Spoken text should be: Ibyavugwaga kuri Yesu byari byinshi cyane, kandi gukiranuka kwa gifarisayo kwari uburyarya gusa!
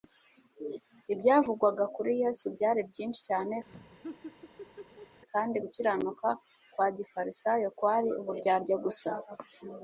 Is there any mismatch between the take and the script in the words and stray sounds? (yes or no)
yes